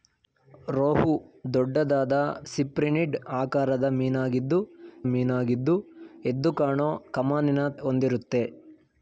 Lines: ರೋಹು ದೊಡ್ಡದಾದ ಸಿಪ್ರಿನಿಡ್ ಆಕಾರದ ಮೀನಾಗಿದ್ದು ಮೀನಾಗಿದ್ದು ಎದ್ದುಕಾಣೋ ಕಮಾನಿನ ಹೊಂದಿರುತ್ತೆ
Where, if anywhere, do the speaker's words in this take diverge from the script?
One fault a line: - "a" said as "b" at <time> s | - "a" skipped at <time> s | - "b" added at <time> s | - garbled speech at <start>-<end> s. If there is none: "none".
none